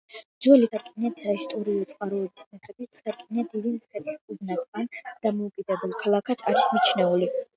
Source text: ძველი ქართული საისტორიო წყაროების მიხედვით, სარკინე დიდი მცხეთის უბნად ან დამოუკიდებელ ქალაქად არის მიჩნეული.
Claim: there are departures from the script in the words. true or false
true